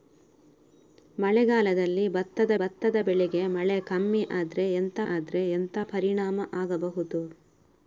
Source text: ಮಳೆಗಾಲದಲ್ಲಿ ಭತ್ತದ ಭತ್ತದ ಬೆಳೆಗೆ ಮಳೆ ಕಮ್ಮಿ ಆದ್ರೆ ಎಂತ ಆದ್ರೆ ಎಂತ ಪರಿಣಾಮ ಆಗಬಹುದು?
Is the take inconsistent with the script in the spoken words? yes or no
no